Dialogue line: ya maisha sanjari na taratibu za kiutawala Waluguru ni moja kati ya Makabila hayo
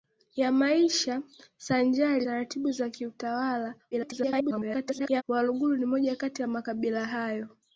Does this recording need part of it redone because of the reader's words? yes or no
yes